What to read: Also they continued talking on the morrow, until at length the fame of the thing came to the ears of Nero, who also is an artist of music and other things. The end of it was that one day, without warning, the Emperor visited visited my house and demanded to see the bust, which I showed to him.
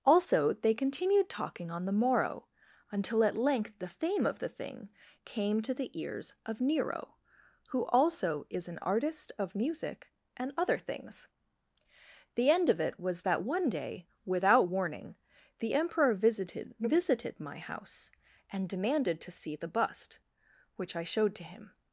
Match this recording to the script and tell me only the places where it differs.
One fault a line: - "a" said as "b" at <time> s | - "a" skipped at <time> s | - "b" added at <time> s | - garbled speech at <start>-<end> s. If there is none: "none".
none